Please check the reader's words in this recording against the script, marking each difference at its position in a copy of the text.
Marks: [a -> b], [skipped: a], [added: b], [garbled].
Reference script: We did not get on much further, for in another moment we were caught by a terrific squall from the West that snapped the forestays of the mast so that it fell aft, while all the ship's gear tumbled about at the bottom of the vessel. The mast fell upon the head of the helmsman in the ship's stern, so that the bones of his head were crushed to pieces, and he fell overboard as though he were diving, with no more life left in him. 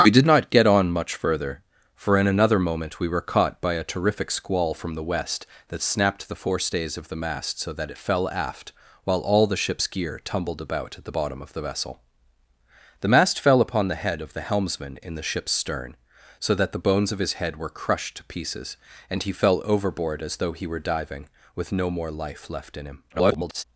We did not get on much further, for in another moment we were caught by a terrific squall from the West that snapped the forestays of the mast so that it fell aft, while all the ship's gear tumbled about at the bottom of the vessel. The mast fell upon the head of the helmsman in the ship's stern, so that the bones of his head were crushed to pieces, and he fell overboard as though he were diving, with no more life left in him. [garbled]